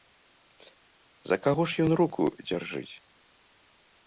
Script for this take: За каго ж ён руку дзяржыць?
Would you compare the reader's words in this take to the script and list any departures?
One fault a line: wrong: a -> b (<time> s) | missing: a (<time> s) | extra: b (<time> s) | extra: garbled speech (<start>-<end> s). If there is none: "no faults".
no faults